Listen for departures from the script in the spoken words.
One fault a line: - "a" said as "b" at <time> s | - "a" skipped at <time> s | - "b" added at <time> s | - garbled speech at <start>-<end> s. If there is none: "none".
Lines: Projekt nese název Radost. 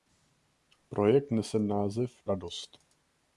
none